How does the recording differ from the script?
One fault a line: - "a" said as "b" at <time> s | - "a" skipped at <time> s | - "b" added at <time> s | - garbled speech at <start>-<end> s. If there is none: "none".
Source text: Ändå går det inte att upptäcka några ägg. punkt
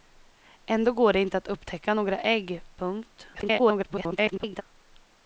- garbled speech at 3.3-4.6 s